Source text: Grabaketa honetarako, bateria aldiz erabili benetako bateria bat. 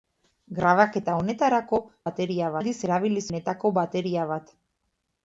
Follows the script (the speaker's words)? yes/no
yes